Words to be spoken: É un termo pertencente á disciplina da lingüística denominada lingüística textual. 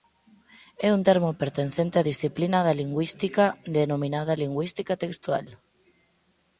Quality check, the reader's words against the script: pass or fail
pass